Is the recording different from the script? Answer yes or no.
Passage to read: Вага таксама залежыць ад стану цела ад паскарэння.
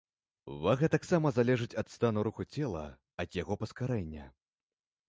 yes